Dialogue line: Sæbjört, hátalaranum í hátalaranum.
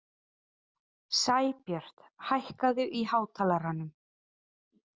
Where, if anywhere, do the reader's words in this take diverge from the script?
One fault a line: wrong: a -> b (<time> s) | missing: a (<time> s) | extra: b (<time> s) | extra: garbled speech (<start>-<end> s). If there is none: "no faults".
wrong: hátalaranum -> hækkaðu (2.3 s)